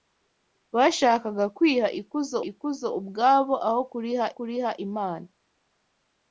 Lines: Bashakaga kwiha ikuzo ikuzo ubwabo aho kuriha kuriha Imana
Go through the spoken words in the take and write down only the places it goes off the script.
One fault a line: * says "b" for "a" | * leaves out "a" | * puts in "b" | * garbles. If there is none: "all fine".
all fine